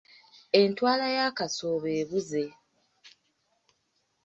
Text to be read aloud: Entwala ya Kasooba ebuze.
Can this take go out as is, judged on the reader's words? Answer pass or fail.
pass